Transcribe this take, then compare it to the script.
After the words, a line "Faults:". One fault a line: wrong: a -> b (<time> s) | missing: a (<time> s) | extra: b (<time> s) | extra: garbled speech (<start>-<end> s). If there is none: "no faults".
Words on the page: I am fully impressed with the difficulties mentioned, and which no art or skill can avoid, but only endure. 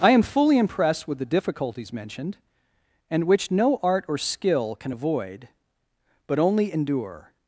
I am fully impressed with the difficulties mentioned, and which no art or skill can avoid, but only endure.
Faults:
no faults